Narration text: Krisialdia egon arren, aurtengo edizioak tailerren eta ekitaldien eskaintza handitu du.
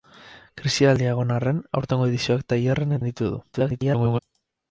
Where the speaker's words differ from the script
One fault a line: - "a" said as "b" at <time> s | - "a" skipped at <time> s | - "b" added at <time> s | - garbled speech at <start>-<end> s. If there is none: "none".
- "eta ekitaldien eskaintza" skipped at 3.0 s
- garbled speech at 3.5-4.2 s